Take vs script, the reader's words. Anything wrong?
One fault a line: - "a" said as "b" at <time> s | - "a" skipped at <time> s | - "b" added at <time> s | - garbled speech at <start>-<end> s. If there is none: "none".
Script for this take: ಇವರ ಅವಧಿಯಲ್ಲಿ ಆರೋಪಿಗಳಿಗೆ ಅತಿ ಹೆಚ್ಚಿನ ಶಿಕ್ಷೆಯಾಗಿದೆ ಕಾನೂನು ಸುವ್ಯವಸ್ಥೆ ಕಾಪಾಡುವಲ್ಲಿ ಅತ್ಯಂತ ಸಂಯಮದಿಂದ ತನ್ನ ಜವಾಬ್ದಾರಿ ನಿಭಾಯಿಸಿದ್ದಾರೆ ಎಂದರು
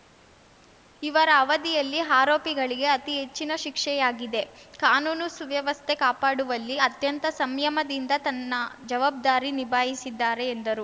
none